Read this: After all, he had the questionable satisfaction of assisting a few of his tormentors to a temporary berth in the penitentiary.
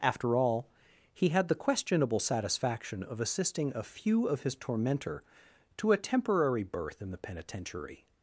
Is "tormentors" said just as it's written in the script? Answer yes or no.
no